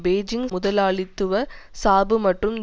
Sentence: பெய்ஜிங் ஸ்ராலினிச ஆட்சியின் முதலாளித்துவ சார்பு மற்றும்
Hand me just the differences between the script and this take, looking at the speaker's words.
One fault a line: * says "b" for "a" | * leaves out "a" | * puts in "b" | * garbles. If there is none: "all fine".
* leaves out "ஸ்ராலினிச ஆட்சியின்"